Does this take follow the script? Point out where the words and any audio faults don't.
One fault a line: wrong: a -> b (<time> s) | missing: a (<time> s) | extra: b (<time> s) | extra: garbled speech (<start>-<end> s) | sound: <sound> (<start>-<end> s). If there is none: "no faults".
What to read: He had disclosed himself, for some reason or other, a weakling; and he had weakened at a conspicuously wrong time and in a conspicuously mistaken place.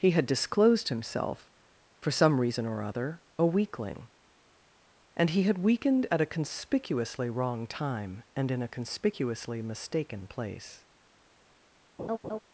sound: laugh (12.0-12.4 s)